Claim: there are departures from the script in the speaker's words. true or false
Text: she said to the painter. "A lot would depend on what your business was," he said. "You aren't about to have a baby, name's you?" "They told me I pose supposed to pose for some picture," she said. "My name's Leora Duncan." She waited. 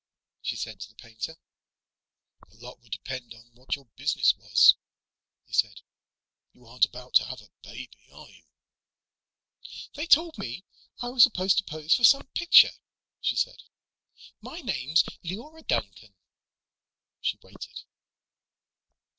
true